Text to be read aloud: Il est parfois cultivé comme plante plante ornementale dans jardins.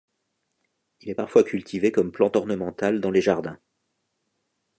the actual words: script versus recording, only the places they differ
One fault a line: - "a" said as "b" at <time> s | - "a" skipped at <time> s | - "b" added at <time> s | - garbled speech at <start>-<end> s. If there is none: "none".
- "plante" skipped at 2.4 s
- "les" added at 3.1 s